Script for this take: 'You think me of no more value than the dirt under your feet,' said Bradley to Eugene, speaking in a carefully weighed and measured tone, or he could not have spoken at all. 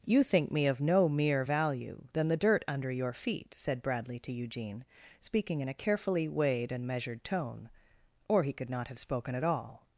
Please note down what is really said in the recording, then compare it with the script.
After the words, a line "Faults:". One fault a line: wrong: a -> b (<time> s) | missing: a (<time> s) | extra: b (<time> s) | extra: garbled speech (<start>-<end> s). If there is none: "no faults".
'You think me of no mere value than the dirt under your feet,' said Bradley to Eugene, speaking in a carefully weighed and measured tone, or he could not have spoken at all.
Faults:
wrong: more -> mere (1.1 s)